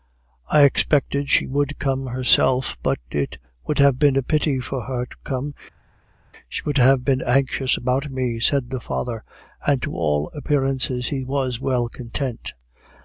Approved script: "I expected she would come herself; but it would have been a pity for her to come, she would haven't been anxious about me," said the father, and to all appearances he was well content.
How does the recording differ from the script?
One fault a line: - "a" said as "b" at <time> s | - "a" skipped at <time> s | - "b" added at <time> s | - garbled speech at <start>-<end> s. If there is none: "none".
- "haven't" said as "have" at 6.8 s